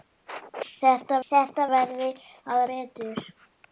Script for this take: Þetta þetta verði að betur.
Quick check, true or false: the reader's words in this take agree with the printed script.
true